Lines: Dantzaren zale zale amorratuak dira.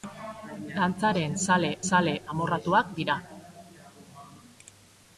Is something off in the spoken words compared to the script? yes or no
no